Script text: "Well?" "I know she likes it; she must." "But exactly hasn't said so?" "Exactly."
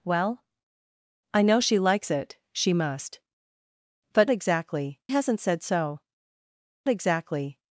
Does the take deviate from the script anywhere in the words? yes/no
no